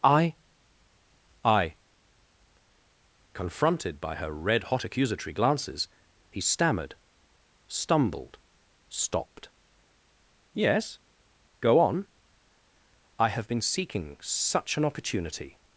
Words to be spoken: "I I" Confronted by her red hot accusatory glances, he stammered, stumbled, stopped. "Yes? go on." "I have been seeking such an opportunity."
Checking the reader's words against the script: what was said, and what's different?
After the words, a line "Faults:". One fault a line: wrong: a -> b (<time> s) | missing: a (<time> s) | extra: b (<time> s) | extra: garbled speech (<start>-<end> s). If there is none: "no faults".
"I I" Confronted by her red hot accusatory glances, he stammered, stumbled, stopped. "Yes? go on." "I have been seeking such an opportunity."
Faults:
no faults